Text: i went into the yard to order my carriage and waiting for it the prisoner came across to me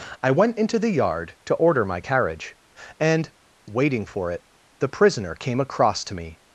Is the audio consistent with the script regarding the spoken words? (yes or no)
yes